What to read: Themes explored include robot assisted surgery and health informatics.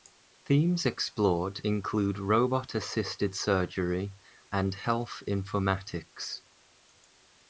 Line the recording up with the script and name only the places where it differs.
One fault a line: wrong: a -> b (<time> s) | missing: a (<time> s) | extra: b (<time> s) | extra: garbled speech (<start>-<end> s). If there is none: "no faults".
no faults